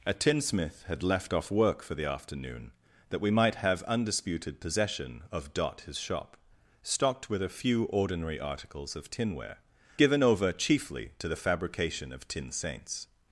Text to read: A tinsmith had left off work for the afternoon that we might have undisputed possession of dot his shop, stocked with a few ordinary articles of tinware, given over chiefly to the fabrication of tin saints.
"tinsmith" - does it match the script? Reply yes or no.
yes